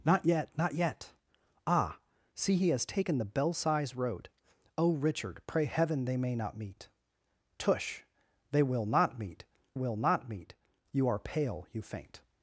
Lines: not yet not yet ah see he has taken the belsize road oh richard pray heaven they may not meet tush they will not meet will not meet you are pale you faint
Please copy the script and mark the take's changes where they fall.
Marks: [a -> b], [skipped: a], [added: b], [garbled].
not yet not yet ah see he has taken the belsize road oh richard pray heaven they may not meet tush they will not meet will not meet you are pale you faint